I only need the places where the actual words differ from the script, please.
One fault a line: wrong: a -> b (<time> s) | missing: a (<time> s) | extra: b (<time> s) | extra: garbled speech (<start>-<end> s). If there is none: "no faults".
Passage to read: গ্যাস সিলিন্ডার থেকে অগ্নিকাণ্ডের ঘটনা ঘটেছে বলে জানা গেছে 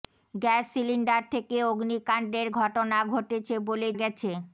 missing: জানা (3.9 s)